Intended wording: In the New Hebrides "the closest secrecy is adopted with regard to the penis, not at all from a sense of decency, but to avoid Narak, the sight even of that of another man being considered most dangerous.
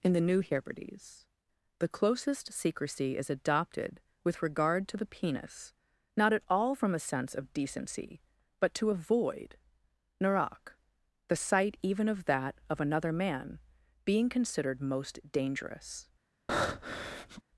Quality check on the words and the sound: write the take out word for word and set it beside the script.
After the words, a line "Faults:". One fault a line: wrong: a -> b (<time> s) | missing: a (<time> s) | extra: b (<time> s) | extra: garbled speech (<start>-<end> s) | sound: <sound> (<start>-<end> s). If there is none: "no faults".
In the New Hebrides "the closest secrecy is adopted with regard to the penis, not at all from a sense of decency, but to avoid Narak, the sight even of that of another man being considered most dangerous.
Faults:
sound: breath (16.5-17.4 s)